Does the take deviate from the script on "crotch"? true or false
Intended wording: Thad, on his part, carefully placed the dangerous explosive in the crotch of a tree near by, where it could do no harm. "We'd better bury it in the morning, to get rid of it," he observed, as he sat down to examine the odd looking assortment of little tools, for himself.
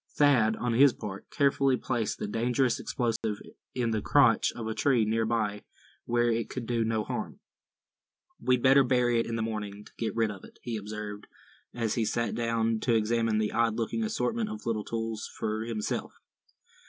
false